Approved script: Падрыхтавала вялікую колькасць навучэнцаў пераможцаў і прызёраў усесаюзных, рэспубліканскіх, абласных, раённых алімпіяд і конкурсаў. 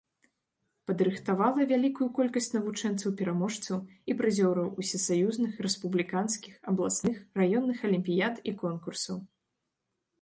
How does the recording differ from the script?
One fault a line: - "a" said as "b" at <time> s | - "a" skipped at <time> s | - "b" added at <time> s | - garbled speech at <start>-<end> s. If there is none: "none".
none